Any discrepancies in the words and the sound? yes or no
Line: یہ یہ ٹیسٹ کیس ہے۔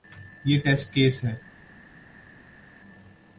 yes